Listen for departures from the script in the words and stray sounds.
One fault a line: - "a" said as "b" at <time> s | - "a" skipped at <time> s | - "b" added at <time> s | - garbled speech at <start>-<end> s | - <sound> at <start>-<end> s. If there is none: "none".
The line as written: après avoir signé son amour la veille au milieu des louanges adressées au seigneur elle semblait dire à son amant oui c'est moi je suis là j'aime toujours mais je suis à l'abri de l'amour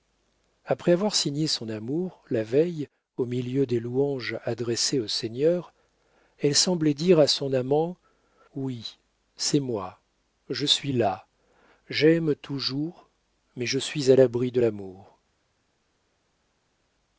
none